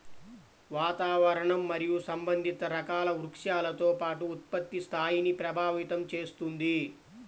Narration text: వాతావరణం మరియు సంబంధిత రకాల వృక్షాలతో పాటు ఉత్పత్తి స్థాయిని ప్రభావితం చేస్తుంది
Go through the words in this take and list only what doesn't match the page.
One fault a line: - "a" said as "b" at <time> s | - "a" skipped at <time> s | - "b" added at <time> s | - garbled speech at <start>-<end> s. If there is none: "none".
none